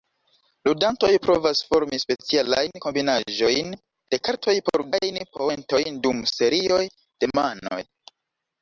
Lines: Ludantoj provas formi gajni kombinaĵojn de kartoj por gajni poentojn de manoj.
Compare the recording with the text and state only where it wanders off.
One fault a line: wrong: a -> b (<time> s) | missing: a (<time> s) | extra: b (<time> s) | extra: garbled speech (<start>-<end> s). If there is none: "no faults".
wrong: gajni -> specialajn (2.0 s)
extra: dum serioj (6.1 s)